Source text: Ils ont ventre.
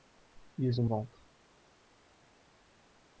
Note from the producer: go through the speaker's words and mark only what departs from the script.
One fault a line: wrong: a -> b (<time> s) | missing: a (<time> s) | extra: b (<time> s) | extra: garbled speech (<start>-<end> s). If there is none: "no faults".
no faults